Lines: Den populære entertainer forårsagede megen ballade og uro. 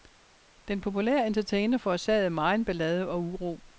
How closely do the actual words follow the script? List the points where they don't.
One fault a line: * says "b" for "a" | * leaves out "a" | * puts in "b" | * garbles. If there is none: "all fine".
all fine